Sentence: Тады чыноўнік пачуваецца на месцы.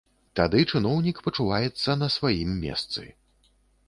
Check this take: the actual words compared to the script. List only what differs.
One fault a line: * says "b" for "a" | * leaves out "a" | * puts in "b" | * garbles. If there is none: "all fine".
* puts in "сваім"